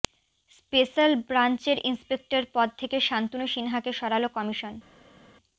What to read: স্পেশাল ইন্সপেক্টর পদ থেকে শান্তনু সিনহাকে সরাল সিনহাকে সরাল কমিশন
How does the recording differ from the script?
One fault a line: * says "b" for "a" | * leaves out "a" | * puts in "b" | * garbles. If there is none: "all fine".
* puts in "ব্রাঞ্চের"
* leaves out "সিনহাকে সরাল"